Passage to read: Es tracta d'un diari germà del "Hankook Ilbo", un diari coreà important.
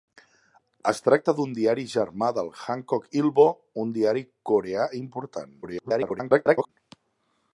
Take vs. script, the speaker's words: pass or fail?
fail